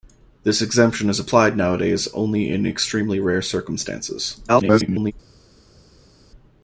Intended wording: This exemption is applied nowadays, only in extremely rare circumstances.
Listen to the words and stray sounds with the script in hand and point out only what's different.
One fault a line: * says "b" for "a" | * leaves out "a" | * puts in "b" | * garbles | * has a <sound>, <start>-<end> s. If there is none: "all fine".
* garbles